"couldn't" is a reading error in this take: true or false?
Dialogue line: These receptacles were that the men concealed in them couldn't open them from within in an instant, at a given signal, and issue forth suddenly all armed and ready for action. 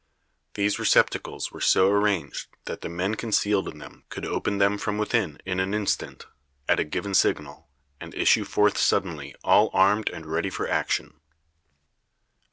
true